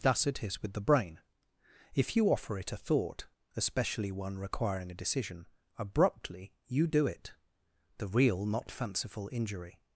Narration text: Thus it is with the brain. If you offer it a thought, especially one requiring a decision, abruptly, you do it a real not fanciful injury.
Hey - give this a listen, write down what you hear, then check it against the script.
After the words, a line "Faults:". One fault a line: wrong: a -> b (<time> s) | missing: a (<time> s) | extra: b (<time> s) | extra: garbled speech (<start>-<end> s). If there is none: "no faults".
Thus it is with the brain. If you offer it a thought, especially one requiring a decision, abruptly, you do it the real not fanciful injury.
Faults:
wrong: a -> the (8.0 s)